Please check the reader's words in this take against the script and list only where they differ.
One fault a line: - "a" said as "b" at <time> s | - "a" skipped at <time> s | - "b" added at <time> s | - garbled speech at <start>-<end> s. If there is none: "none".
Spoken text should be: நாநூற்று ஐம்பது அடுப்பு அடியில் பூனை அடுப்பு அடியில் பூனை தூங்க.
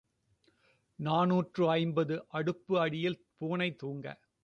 - "அடுப்பு அடியில் பூனை" skipped at 3.7 s